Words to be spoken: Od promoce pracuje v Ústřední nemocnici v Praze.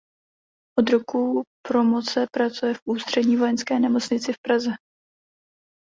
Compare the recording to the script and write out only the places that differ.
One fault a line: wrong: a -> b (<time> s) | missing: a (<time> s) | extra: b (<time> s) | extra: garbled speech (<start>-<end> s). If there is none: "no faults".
extra: roku (0.9 s)
extra: vojenské (3.4 s)